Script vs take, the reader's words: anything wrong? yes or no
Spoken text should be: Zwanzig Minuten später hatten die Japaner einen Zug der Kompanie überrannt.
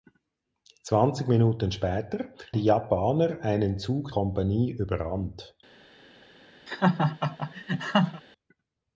yes